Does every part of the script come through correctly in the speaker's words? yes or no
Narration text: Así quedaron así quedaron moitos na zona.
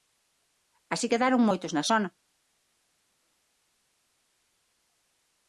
no